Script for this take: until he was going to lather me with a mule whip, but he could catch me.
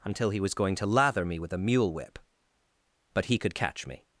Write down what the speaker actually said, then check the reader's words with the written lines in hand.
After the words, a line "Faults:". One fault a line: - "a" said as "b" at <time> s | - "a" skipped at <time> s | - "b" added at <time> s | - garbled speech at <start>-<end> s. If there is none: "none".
until he was going to lather me with a mule whip, but he could catch me.
Faults:
none